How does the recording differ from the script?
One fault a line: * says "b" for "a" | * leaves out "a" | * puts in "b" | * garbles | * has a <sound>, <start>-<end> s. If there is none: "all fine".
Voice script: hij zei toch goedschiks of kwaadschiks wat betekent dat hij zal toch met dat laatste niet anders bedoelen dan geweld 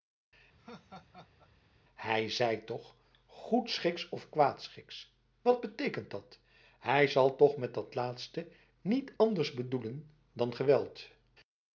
* has a laugh, 0.6-1.5 s